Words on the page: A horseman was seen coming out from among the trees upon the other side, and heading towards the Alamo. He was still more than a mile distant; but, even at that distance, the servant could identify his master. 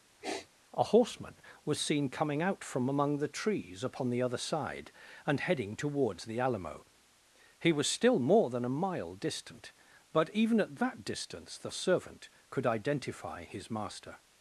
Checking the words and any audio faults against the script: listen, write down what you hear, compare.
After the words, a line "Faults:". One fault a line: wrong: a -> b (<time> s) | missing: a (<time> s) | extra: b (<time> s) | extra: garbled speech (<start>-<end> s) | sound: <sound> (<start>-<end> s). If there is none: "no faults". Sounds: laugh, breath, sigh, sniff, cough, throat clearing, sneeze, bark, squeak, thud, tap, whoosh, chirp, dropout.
A horseman was seen coming out from among the trees upon the other side, and heading towards the Alamo. He was still more than a mile distant; but, even at that distance, the servant could identify his master.
Faults:
sound: sniff (0.2-0.5 s)